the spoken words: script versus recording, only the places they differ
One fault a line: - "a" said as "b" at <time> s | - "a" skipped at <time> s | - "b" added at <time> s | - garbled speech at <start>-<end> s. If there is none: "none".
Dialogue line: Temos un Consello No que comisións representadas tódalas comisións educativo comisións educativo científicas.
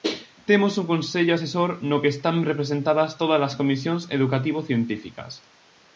- "Asesor" added at 1.3 s
- "comisións" said as "están" at 2.2 s
- "comisións educativo" skipped at 4.6 s